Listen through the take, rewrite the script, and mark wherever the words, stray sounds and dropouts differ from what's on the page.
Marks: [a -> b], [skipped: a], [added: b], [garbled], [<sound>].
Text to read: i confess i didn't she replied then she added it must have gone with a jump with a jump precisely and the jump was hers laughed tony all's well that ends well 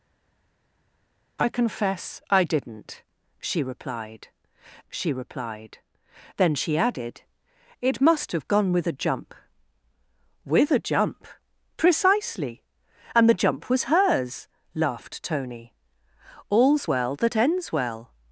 i confess i didn't she replied [added: she replied] then she added it must have gone with a jump with a jump precisely and the jump was hers laughed tony all's well that ends well